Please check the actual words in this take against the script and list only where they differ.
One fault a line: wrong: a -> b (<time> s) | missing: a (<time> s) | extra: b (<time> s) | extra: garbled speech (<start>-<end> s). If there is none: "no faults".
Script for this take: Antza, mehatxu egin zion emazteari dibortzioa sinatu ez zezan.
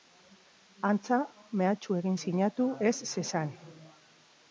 missing: zion emazteari dibortzioa (2.1 s)